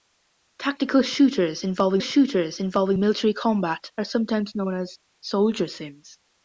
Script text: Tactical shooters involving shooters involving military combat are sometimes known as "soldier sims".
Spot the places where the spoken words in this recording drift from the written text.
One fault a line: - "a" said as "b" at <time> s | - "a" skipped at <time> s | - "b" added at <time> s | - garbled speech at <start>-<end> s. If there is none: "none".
none